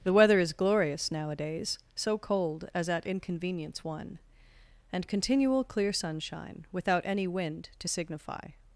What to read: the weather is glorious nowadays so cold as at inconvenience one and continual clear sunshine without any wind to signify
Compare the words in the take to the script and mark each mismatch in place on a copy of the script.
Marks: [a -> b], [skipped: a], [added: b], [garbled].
the weather is glorious nowadays so cold as at inconvenience one and continual clear sunshine without any wind to signify